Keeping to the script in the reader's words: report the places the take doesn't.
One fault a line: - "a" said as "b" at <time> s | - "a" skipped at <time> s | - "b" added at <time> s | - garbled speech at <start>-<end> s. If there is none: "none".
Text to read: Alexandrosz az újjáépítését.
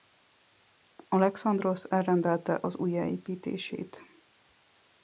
- "elrendelte" added at 1.9 s